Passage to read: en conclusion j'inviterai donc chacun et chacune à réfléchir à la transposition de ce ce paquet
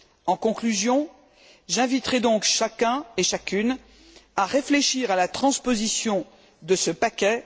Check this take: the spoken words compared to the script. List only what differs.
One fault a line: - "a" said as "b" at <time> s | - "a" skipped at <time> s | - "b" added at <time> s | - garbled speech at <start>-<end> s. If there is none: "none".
- "ce" skipped at 6.9 s